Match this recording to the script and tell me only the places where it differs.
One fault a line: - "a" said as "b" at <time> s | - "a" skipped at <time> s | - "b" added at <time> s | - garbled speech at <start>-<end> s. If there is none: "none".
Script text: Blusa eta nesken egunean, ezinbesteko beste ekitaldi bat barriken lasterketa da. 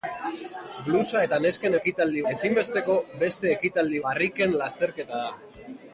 - "egunean" said as "ekitaldi" at 1.8 s
- "bat" skipped at 4.0 s